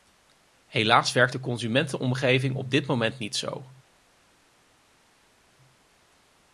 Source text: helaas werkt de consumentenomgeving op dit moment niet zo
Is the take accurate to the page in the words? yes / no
yes